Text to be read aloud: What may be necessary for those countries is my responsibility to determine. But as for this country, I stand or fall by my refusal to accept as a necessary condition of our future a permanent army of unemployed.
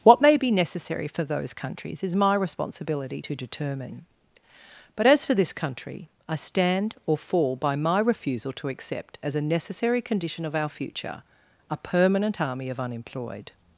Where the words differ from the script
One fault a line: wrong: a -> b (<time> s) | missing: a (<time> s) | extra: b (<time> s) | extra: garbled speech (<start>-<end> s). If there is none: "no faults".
no faults